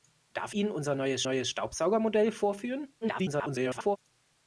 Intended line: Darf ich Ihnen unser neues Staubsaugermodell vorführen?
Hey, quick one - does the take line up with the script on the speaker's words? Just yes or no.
no